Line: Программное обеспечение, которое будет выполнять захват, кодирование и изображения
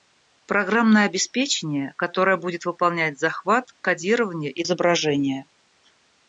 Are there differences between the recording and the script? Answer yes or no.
no